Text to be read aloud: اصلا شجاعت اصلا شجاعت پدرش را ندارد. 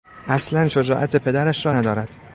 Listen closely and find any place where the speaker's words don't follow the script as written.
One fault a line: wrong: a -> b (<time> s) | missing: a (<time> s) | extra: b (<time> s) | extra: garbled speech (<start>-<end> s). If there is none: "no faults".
missing: اصلا شجاعت (1.2 s)